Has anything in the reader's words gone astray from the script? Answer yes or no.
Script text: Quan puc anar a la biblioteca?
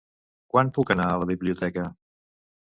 no